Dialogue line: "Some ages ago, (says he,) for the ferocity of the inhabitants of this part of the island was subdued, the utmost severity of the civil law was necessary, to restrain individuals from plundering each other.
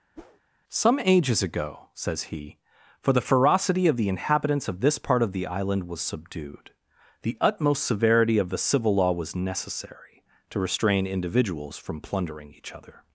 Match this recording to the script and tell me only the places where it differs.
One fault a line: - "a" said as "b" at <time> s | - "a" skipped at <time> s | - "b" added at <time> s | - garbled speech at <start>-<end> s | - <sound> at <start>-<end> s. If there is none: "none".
- whoosh at 0.2-0.4 s